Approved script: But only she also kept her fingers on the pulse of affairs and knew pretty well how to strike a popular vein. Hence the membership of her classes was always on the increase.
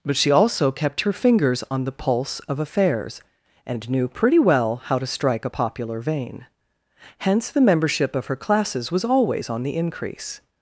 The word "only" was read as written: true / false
false